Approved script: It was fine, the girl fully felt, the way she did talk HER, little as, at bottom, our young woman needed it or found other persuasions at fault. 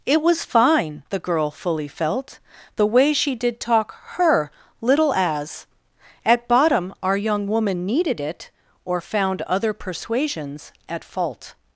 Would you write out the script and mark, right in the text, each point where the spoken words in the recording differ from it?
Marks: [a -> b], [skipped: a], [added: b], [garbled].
It was fine, the girl fully felt, the way she did talk HER, little as, at bottom, our young woman needed it or found other persuasions at fault.